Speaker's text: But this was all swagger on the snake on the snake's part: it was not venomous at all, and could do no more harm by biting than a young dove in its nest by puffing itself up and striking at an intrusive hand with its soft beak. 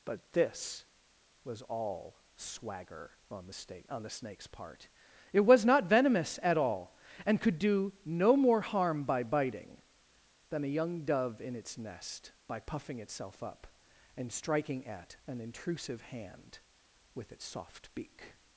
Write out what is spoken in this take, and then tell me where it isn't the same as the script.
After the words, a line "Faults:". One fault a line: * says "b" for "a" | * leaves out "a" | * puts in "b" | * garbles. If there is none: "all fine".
But this was all swagger on the snake on the snake's part: it was not venomous at all, and could do no more harm by biting than a young dove in its nest by puffing itself up and striking at an intrusive hand with its soft beak.
Faults:
all fine